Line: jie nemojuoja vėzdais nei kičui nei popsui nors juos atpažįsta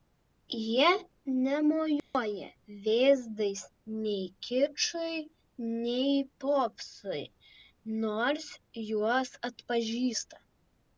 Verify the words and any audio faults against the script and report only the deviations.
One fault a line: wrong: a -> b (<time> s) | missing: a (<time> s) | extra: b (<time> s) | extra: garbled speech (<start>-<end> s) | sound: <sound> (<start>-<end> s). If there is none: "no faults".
sound: dropout (2.0-2.1 s)